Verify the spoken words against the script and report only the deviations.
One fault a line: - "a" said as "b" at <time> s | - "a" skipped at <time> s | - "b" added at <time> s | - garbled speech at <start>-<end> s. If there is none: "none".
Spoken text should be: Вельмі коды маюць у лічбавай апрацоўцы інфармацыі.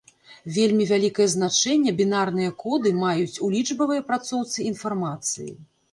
- "вялікае значэнне бінарныя" added at 0.9 s